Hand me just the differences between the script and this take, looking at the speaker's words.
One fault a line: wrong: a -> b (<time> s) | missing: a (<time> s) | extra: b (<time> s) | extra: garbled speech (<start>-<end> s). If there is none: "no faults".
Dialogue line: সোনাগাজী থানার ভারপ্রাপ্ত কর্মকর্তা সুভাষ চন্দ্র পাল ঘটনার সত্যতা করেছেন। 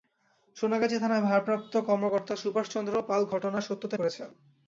no faults